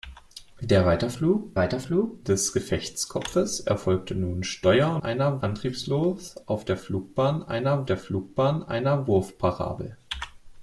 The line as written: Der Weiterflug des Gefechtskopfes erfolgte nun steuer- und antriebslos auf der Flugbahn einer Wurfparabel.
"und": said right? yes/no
no